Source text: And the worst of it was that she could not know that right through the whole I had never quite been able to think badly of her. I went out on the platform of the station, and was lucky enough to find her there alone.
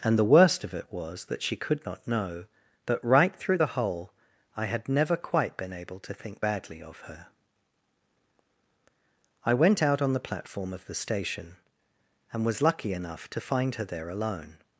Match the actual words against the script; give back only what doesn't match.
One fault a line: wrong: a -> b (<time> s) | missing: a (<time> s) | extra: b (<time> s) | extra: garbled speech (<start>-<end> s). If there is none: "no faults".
no faults